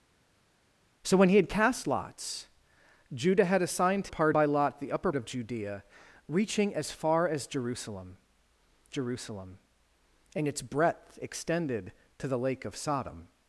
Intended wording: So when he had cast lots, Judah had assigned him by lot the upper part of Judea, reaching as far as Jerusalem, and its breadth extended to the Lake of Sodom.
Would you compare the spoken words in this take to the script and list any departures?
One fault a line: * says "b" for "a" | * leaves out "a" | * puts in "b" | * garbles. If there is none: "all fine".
* says "part" for "him"
* leaves out "part"
* puts in "Jerusalem"